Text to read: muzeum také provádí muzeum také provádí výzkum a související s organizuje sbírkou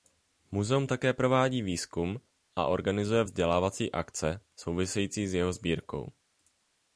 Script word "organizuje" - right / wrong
wrong